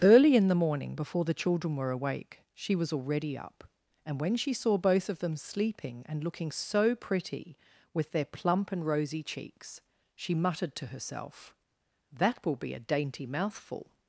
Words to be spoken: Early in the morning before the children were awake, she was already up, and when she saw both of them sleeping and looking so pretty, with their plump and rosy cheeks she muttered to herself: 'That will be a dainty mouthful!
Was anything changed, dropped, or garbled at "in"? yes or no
no